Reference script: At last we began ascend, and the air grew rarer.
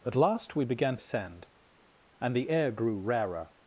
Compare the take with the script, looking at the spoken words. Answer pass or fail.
pass